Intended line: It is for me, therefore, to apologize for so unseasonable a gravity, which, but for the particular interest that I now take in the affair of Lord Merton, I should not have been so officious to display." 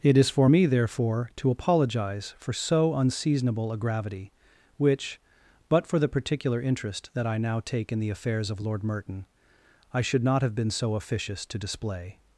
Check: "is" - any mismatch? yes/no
no